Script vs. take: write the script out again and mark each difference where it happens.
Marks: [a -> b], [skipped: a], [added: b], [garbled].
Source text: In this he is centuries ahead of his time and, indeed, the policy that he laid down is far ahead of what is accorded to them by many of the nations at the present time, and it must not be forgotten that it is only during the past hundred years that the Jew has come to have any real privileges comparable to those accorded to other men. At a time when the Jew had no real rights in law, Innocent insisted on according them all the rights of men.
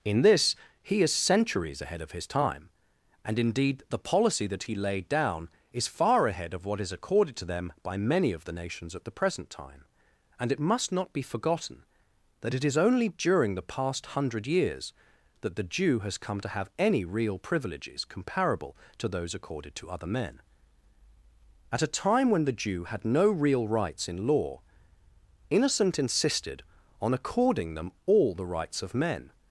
In this he is centuries ahead of his time and, indeed, the policy that he laid down is far ahead of what is accorded to them by many of the nations at the present time, and it must not be forgotten that it is only during the past hundred years that the Jew has come to have any real privileges comparable to those accorded to other men. At a time when the Jew had no real rights in law, Innocent insisted on according them all the rights of men.